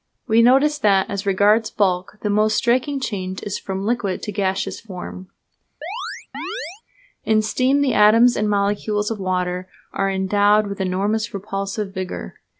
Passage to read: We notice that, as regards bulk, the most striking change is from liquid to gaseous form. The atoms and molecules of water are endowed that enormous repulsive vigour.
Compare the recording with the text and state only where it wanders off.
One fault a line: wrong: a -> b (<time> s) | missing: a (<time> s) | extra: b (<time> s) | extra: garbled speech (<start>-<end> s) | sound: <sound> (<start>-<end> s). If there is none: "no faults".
sound: chirp (5.8-6.8 s)
extra: In steam (7.3 s)
wrong: that -> with (10.7 s)